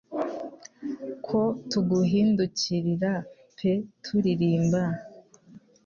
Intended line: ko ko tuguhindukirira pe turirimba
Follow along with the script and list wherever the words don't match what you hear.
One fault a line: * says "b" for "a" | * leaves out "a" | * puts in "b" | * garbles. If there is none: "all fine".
* leaves out "ko"